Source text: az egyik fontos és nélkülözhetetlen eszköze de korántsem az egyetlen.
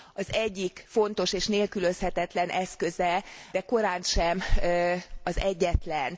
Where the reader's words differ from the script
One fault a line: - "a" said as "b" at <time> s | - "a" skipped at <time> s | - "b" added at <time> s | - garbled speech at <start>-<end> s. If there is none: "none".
none